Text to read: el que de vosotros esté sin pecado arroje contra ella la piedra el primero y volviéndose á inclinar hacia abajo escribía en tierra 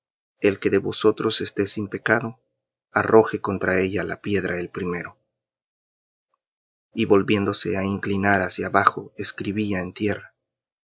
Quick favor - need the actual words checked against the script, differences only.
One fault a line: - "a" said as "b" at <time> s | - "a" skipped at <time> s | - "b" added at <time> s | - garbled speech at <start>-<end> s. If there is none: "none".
none